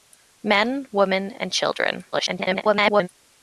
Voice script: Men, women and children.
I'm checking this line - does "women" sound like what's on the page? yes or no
yes